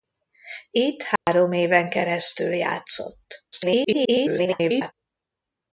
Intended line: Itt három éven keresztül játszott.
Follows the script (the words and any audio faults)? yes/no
no